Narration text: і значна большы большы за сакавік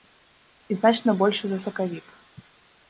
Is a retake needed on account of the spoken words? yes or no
yes